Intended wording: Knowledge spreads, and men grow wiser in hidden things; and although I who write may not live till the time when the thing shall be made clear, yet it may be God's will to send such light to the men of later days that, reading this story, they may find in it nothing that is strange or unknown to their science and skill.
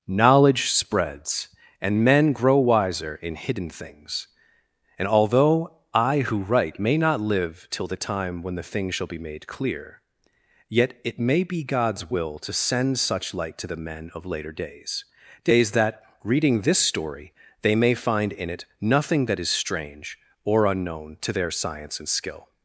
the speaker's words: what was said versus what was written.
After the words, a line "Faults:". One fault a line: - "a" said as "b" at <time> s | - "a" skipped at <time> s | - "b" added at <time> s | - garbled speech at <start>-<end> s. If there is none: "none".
Knowledge spreads, and men grow wiser in hidden things; and although I who write may not live till the time when the thing shall be made clear, yet it may be God's will to send such light to the men of later days days that, reading this story, they may find in it nothing that is strange or unknown to their science and skill.
Faults:
- "days" added at 15.4 s